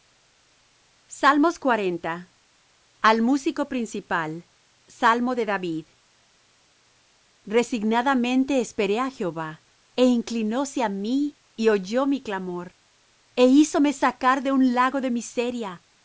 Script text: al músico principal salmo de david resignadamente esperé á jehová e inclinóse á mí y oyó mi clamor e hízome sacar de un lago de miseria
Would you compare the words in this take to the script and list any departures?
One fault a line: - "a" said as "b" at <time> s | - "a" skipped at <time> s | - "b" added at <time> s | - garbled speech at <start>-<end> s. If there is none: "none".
none